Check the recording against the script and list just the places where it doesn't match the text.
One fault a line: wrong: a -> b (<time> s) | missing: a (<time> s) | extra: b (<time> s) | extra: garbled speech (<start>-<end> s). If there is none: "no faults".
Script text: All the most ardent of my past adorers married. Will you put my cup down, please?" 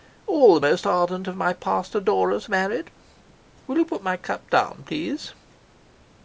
no faults